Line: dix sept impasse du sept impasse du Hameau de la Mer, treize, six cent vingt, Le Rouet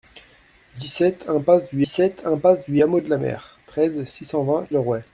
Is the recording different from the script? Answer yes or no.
no